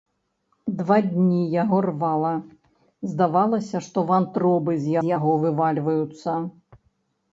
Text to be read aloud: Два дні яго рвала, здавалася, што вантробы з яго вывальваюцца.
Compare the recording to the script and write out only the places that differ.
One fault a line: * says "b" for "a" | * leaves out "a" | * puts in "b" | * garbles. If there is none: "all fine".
* puts in "з"